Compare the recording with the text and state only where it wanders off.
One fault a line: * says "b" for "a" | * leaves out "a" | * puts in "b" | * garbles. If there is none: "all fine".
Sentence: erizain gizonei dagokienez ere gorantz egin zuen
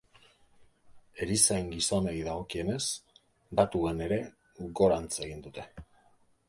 * puts in "datuen"
* says "dute" for "zuen"